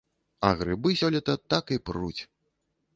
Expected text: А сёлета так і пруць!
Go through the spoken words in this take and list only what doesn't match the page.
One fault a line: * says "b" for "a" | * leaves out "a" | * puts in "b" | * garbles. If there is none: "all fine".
* puts in "грыбы"